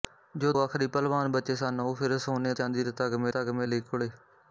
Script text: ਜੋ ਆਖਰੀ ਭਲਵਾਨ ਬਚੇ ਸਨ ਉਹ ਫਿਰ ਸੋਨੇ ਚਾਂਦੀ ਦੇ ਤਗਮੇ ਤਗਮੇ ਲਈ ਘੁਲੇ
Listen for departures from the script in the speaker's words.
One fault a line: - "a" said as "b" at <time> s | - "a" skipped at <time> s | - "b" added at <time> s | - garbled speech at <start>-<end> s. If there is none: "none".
none